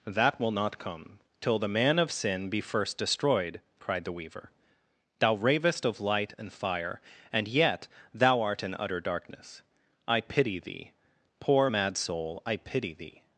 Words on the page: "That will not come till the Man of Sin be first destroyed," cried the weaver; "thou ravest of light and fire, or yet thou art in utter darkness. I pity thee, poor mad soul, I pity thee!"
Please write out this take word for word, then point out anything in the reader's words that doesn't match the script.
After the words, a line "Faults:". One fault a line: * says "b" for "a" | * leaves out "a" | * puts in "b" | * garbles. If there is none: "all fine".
"That will not come till the Man of Sin be first destroyed," cried the weaver; "thou ravest of light and fire, and yet thou art in utter darkness. I pity thee, poor mad soul, I pity thee!"
Faults:
* says "and" for "or"